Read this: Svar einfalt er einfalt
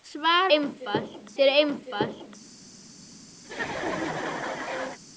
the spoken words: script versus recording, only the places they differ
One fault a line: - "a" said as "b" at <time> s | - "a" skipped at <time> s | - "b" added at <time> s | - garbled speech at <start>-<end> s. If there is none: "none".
none